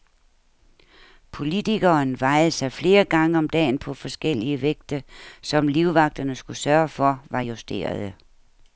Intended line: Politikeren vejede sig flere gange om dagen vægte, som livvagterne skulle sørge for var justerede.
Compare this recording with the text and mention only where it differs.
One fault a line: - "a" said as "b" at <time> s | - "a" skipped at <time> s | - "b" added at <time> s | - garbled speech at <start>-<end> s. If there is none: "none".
- "på forskellige" added at 3.8 s